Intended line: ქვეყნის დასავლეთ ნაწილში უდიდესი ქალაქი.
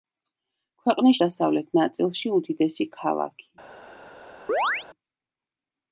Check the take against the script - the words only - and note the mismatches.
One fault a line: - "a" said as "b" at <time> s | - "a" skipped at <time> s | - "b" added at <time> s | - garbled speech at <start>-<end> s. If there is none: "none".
none